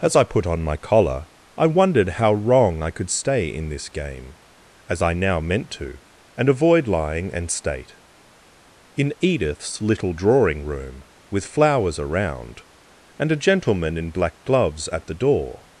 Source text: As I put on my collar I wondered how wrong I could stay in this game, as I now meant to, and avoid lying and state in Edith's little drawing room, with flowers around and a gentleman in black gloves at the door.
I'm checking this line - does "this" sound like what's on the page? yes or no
yes